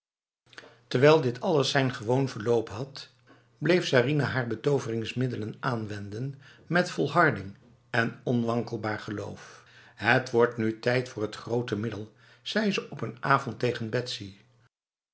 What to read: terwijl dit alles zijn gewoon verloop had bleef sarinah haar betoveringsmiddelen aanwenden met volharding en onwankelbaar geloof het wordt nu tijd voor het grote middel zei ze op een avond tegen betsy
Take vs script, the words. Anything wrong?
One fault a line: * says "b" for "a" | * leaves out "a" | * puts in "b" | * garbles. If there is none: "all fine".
all fine